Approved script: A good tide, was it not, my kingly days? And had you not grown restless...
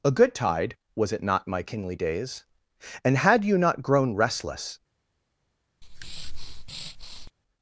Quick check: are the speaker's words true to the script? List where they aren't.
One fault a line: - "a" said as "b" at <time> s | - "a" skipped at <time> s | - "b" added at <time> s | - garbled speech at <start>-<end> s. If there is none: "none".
none